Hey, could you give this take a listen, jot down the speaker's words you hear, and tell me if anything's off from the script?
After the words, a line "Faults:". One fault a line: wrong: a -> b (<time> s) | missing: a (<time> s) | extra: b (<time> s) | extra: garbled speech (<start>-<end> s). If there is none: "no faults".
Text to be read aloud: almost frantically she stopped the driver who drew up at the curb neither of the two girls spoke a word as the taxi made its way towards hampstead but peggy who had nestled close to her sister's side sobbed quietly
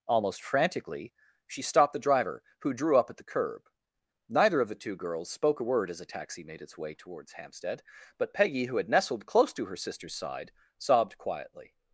almost frantically she stopped the driver who drew up at the curb neither of the two girls spoke a word as a taxi made its way towards hampstead but peggy who had nestled close to her sister's side sobbed quietly
Faults:
wrong: the -> a (6.0 s)